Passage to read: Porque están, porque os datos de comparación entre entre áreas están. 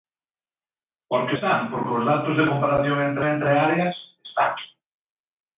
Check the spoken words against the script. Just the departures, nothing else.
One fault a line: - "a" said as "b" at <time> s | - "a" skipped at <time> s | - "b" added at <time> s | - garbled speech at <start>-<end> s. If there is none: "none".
none